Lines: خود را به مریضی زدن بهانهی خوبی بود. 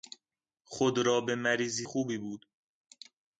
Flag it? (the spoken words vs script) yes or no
yes